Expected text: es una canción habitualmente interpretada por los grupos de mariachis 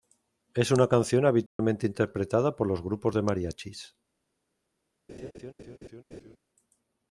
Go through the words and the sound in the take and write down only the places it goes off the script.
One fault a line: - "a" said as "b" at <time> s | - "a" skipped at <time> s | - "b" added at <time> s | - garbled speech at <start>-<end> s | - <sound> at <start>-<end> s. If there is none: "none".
- dropout at 1.5-1.6 s
- laugh at 5.1-6.4 s